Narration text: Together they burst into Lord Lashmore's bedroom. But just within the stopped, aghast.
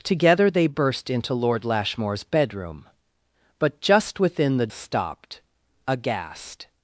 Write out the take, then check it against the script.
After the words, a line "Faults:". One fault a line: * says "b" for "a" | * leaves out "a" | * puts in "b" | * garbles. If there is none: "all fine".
Together they burst into Lord Lashmore's bedroom. But just within the stopped, aghast.
Faults:
all fine